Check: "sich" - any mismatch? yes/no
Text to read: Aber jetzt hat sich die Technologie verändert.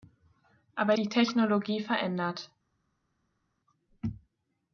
yes